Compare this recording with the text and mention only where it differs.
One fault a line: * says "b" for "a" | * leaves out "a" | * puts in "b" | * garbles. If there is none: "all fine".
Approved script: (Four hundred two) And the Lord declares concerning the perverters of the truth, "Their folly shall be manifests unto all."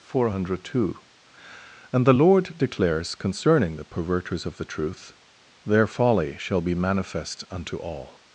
* says "manifest" for "manifests"